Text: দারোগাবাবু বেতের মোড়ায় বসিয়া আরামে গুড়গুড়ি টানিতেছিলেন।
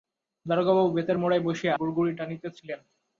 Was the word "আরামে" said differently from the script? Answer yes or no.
yes